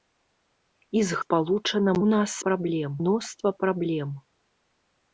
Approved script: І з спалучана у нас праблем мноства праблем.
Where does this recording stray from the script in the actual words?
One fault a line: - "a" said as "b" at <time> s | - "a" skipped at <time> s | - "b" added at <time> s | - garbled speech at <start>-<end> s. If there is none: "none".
none